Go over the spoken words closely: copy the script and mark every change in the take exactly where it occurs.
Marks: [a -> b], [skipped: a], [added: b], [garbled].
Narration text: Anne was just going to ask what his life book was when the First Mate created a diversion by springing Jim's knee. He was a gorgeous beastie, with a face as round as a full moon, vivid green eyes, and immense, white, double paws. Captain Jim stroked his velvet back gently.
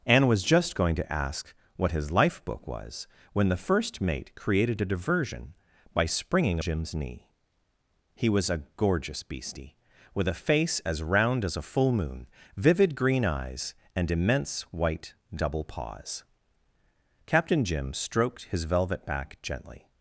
Anne was just going to ask what his life book was when the First Mate created a diversion by springing Jim's knee. He was a gorgeous beastie, with a face as round as a full moon, vivid green eyes, and immense, white, double paws. Captain Jim stroked his velvet back gently.